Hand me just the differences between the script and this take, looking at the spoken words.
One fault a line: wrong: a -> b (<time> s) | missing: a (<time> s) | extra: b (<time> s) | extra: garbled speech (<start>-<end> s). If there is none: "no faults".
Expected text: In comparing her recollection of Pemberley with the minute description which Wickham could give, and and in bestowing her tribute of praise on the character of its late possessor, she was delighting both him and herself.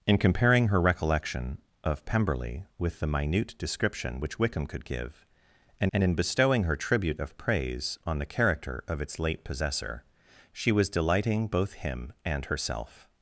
no faults